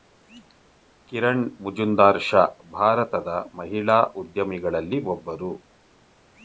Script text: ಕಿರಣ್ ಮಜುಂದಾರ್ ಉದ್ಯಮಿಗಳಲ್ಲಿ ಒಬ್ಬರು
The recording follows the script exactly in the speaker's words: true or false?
false